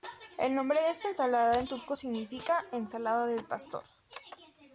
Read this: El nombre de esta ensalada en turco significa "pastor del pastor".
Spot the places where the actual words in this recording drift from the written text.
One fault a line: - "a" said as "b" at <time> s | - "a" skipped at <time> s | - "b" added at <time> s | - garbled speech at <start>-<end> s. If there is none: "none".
- "pastor" said as "ensalada" at 2.7 s